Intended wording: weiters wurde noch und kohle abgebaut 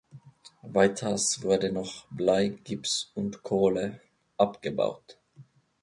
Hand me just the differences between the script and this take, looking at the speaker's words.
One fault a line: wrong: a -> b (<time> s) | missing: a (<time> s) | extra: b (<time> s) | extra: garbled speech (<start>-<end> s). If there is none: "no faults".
extra: blei gips (2.1 s)